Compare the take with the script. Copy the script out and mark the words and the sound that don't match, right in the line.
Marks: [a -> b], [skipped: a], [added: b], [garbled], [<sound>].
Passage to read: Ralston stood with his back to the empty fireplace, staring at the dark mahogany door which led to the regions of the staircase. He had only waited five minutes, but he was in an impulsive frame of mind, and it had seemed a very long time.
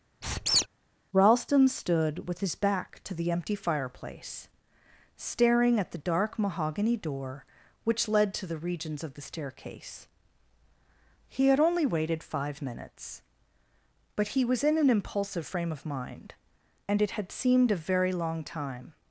[squeak] Ralston stood with his back to the empty fireplace, staring at the dark mahogany door which led to the regions of the staircase. He had only waited five minutes, but he was in an impulsive frame of mind, and it had seemed a very long time.